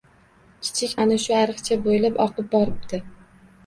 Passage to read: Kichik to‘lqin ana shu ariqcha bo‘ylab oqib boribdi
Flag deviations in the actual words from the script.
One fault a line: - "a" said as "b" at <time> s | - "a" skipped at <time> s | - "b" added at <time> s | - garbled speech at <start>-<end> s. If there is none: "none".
- "to‘lqin" skipped at 0.9 s